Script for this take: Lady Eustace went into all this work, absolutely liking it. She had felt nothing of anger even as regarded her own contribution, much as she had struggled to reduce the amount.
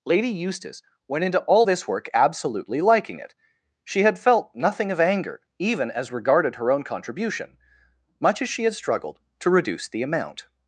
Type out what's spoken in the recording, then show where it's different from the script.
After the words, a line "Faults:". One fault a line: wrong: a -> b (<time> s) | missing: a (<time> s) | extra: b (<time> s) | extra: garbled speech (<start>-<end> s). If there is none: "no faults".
Lady Eustace went into all this work, absolutely liking it. She had felt nothing of anger even as regarded her own contribution, much as she had struggled to reduce the amount.
Faults:
no faults